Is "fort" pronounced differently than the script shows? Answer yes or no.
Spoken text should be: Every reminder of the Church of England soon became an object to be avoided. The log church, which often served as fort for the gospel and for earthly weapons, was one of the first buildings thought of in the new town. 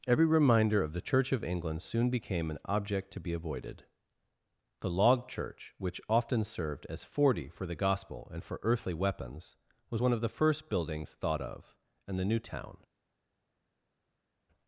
yes